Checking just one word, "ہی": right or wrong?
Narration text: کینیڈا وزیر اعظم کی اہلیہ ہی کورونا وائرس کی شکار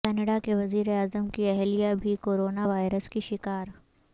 wrong